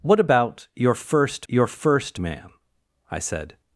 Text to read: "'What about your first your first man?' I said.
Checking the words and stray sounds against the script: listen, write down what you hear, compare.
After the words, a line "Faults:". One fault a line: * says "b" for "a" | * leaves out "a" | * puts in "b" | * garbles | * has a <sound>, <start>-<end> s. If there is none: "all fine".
"'What about your first your first man?' I said.
Faults:
all fine